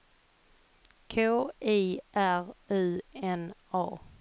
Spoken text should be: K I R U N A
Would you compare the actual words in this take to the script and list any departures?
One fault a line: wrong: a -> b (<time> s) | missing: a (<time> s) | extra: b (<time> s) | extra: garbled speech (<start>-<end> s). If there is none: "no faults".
no faults